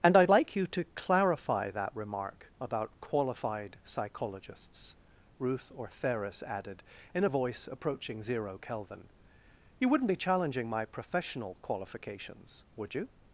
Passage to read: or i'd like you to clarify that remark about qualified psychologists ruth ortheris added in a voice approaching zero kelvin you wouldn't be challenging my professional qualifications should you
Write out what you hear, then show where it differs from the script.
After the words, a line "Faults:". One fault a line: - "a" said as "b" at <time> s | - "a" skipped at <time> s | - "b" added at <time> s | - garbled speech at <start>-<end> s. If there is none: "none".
and i'd like you to clarify that remark about qualified psychologists ruth ortheris added in a voice approaching zero kelvin you wouldn't be challenging my professional qualifications would you
Faults:
- "or" said as "and" at 0.0 s
- "should" said as "would" at 12.7 s